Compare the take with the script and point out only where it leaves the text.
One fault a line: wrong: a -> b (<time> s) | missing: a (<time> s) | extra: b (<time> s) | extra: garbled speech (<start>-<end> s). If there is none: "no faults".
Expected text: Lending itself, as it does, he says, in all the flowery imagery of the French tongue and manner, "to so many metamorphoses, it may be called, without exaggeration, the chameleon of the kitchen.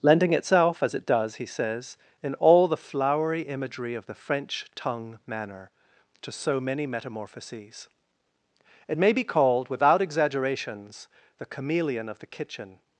missing: and (5.2 s)
wrong: exaggeration -> exaggerations (10.0 s)